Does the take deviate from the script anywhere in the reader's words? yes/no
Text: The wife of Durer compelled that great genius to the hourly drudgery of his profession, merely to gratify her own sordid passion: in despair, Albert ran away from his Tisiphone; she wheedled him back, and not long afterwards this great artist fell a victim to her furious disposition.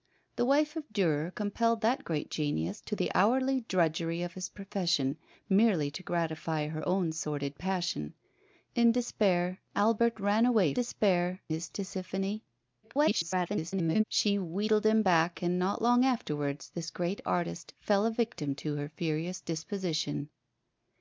yes